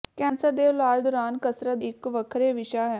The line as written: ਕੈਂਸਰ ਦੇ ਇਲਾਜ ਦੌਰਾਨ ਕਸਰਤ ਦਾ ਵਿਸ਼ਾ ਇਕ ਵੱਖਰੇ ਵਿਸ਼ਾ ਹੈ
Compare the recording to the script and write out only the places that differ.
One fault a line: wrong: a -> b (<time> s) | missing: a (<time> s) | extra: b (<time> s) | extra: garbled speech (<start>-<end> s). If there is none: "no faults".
missing: ਦਾ ਵਿਸ਼ਾ (1.8 s)